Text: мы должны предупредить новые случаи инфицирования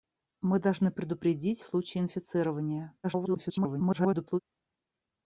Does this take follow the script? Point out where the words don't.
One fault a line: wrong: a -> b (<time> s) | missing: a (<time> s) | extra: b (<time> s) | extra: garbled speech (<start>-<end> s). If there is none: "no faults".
missing: новые (1.6 s)
extra: garbled speech (3.0-4.4 s)